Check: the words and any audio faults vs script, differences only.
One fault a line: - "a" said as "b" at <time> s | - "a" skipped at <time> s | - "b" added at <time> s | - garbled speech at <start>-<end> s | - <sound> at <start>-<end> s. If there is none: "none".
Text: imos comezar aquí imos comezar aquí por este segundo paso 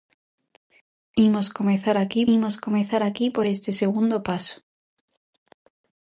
none